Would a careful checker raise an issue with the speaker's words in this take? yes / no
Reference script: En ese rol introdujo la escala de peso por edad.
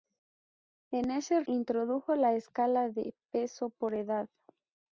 yes